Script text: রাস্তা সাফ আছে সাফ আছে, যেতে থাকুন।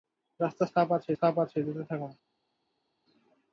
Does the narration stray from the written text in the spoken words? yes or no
no